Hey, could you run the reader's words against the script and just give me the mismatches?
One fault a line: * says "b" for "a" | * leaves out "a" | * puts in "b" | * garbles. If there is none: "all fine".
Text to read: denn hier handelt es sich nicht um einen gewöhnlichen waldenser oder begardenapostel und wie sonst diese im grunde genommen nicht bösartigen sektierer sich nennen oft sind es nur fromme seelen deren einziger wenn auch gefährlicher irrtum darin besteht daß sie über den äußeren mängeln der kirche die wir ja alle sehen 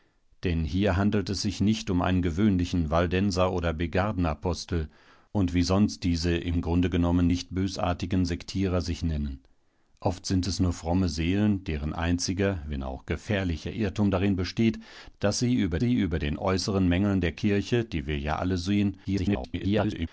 * puts in "sie über"
* garbles